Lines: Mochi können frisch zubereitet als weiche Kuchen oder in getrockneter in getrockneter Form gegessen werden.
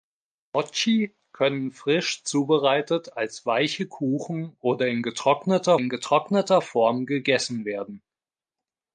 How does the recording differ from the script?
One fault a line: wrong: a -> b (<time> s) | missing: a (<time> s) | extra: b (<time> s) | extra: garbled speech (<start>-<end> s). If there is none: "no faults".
no faults